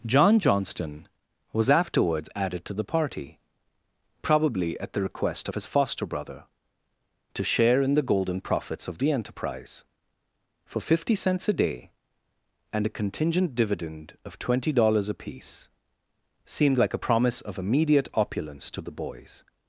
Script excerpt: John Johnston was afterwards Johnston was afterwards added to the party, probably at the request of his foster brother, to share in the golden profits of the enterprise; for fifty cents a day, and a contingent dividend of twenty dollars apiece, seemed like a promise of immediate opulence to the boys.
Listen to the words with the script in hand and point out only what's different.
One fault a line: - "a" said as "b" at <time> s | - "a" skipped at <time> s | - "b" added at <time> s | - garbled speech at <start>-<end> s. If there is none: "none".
- "Johnston was afterwards" skipped at 2.3 s